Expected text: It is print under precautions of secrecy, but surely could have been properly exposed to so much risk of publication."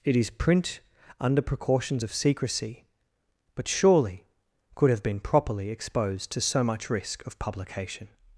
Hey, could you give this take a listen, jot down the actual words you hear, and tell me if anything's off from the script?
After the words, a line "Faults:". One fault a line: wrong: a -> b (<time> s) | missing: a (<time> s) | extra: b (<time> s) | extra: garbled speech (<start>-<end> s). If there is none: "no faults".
It is print under precautions of secrecy, but surely could have been properly exposed to so much risk of publication."
Faults:
no faults